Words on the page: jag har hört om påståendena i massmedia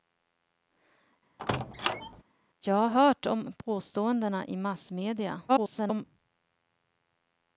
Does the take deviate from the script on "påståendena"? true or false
false